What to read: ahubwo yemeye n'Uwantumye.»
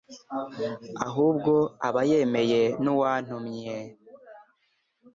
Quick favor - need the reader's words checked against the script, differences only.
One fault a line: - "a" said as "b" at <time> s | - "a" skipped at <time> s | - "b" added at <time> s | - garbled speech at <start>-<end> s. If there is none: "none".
- "aba" added at 1.9 s